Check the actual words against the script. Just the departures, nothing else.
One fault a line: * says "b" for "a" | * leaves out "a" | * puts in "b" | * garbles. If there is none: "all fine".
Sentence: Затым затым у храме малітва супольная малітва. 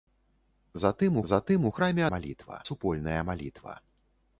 all fine